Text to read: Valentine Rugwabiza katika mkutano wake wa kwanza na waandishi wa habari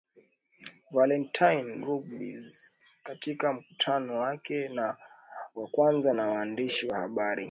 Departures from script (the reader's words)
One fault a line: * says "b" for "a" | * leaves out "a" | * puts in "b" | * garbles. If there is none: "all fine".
all fine